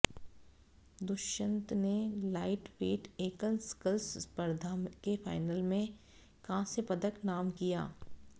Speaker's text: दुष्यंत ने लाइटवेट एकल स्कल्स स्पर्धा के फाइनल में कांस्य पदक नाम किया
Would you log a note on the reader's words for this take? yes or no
no